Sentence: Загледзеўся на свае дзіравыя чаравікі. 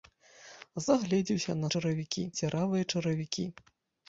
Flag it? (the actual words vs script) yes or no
yes